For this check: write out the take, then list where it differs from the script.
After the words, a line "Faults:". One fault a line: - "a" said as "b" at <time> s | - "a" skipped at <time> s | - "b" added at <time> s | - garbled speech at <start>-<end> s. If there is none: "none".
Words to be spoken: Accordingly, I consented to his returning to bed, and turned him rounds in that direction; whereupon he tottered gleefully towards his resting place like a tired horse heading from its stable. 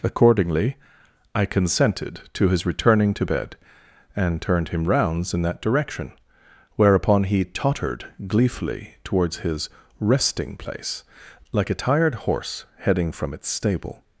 Accordingly, I consented to his returning to bed, and turned him rounds in that direction; whereupon he tottered gleefully towards his resting place like a tired horse heading from its stable.
Faults:
none